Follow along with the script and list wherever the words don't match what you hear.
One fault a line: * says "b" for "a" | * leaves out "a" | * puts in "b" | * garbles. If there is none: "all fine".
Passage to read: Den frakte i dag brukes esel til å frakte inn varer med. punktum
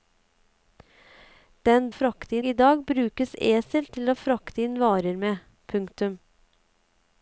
all fine